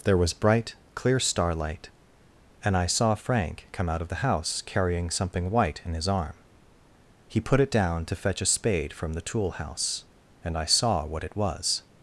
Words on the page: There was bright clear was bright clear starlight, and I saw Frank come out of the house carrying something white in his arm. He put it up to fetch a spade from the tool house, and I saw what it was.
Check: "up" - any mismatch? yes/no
yes